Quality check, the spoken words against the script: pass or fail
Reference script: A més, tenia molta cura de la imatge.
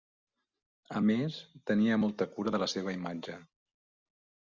fail